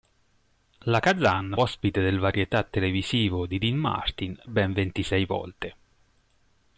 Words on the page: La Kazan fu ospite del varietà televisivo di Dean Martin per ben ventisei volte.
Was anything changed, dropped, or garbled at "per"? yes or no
yes